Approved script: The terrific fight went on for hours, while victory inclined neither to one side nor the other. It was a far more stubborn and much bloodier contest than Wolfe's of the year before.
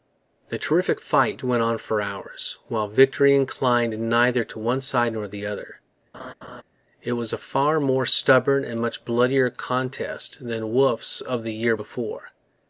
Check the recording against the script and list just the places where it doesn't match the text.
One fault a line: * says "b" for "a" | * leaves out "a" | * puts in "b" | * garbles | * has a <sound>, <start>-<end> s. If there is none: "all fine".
* has a laugh, 6.1-6.6 s